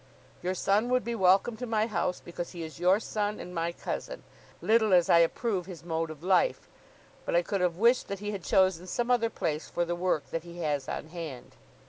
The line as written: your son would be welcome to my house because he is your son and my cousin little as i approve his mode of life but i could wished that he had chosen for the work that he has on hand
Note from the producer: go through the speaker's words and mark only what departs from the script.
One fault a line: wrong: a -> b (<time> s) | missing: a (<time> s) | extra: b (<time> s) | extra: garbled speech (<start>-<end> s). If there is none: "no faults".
extra: have (7.6 s)
extra: some other place (8.9 s)